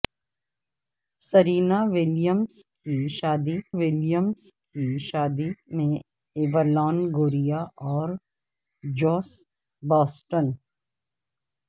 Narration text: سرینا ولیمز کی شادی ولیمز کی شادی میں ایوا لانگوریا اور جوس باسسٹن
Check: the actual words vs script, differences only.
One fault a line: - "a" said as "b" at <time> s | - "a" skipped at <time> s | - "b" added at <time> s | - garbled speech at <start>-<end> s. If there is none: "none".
none